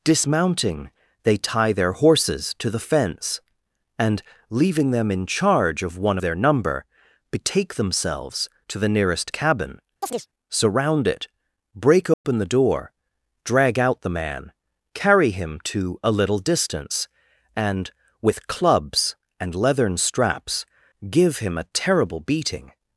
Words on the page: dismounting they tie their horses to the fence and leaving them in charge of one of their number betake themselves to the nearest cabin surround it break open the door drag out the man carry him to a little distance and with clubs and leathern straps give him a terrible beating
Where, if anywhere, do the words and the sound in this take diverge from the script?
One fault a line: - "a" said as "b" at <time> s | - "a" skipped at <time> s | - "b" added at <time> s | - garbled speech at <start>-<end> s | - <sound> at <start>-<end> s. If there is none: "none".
- "of" skipped at 6.2 s
- chirp at 10.0-10.3 s
- dropout at 12.1-12.2 s